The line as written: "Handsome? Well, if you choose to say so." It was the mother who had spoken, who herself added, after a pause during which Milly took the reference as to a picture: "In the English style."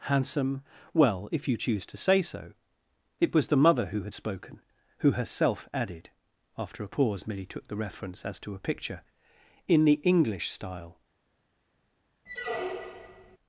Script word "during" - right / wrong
wrong